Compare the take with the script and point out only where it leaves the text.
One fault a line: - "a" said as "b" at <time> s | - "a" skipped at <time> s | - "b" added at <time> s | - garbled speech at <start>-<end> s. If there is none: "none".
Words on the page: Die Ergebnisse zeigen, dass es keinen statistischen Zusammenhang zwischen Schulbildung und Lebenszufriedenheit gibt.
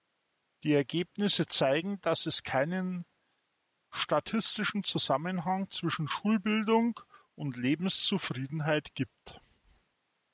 none